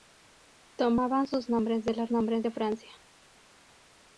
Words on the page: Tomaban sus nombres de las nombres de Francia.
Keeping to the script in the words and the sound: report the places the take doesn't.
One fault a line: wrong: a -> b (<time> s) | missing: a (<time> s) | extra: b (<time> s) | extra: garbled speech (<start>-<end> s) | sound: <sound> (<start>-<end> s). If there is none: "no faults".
no faults